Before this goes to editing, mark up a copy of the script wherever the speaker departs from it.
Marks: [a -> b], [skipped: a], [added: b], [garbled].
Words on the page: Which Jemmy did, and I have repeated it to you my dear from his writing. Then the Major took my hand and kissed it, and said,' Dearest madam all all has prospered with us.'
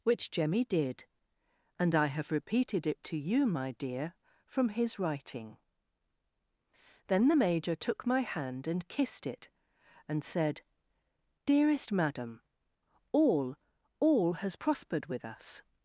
Which Jemmy did, and I have repeated it to you my dear from his writing. Then the Major took my hand and kissed it, and said,' Dearest madam all all has prospered with us.'